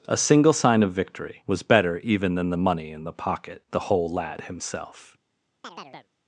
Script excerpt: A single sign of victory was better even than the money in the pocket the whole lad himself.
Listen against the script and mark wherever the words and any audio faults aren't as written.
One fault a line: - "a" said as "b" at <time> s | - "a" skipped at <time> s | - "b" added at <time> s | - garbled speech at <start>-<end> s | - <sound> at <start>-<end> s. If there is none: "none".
- chirp at 5.6-6.1 s